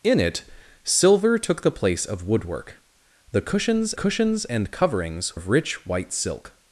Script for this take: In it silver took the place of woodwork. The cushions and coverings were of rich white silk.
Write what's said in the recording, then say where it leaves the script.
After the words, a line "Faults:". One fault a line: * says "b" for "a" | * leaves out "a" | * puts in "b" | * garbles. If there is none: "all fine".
In it silver took the place of woodwork. The cushions cushions and coverings of rich white silk.
Faults:
* puts in "cushions"
* leaves out "were"